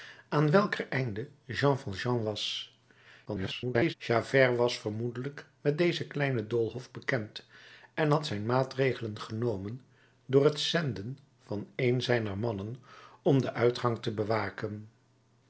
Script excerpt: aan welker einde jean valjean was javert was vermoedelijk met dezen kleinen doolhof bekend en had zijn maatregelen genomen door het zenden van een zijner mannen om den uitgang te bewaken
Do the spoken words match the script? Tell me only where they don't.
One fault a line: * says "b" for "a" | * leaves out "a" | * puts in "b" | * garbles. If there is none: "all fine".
* garbles